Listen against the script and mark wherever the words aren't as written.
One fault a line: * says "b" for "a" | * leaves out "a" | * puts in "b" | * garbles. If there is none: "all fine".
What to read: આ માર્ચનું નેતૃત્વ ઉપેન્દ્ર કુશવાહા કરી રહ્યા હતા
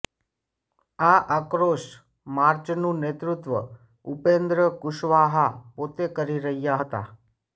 * puts in "આક્રોશ"
* puts in "પોતે"